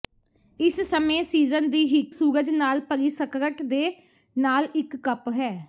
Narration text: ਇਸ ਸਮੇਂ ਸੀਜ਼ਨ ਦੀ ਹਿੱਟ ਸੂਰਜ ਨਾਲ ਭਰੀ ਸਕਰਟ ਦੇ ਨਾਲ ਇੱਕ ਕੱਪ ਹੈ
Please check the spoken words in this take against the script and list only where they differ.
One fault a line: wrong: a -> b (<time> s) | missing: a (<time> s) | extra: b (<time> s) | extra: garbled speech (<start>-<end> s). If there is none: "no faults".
no faults